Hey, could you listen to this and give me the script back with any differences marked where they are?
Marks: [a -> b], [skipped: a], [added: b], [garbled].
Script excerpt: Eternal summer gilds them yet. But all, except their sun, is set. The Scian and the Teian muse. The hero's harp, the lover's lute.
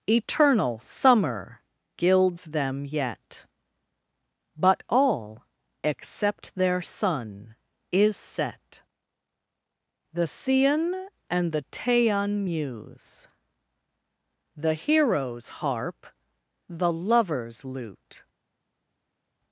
Eternal summer gilds them yet. But all, except their sun, is set. The Scian and the Teian muse. The hero's harp, the lover's lute.